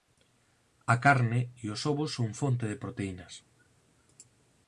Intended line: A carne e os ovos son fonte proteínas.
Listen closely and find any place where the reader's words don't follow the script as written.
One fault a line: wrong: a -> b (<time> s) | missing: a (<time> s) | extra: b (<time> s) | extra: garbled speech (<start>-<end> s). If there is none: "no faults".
extra: de (2.7 s)